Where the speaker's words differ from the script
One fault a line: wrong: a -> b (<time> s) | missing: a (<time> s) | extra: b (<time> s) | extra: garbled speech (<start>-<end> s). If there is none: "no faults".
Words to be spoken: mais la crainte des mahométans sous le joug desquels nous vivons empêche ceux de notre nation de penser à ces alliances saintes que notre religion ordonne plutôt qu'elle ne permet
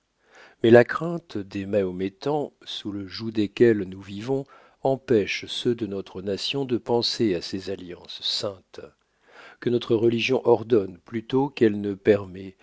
no faults